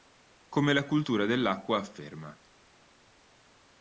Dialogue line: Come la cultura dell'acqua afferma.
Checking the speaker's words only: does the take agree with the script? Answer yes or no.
yes